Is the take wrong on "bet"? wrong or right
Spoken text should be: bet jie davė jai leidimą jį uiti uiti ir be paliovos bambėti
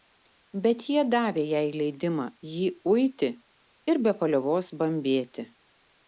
right